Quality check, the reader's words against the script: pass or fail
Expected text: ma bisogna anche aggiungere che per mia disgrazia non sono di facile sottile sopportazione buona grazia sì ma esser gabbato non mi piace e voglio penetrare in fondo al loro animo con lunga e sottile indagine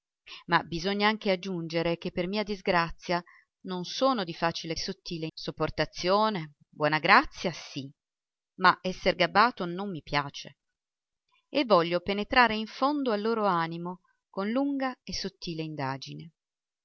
pass